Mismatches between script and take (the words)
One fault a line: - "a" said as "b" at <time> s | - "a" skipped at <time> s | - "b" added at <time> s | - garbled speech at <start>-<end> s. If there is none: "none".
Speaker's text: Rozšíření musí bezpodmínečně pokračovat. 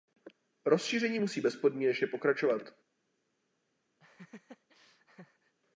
none